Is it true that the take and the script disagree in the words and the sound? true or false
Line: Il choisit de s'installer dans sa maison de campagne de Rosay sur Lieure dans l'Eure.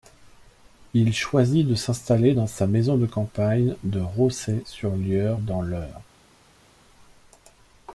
false